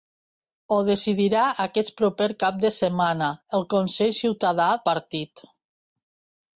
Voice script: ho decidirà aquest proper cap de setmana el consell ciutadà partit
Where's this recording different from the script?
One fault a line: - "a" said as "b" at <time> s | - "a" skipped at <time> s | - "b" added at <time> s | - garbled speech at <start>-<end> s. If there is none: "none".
none